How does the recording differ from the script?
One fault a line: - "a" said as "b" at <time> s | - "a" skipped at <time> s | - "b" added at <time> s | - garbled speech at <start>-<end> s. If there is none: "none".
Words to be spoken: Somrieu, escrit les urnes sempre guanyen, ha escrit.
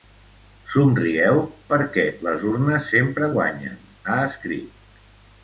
- "escrit" said as "perquè" at 1.7 s